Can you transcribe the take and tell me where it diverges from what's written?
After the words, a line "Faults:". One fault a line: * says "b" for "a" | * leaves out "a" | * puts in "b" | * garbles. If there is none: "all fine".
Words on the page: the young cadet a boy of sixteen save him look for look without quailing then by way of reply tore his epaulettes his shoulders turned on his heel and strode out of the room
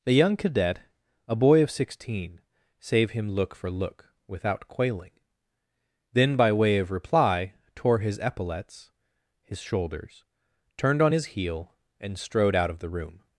the young cadet a boy of sixteen save him look for look without quailing then by way of reply tore his epaulettes his shoulders turned on his heel and strode out of the room
Faults:
all fine